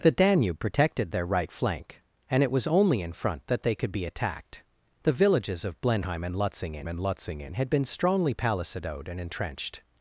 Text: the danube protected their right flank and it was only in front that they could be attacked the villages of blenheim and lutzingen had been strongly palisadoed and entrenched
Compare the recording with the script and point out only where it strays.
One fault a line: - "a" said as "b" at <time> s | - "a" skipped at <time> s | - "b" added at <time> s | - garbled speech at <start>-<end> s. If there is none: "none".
- "and lutzingen" added at 6.9 s